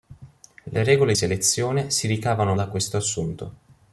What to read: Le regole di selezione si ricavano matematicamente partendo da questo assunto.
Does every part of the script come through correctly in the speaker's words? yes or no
no